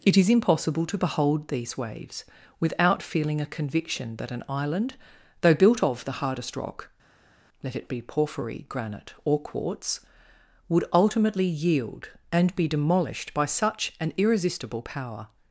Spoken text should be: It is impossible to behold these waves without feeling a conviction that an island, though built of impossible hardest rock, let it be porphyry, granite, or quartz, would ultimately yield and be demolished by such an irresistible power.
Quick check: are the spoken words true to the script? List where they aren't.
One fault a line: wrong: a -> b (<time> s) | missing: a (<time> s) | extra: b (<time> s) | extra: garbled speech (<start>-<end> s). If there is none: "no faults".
wrong: impossible -> the (6.1 s)